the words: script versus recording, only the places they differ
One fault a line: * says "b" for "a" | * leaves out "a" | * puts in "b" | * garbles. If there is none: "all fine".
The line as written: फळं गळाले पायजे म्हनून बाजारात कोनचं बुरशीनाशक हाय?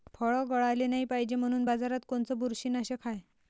* puts in "नाही"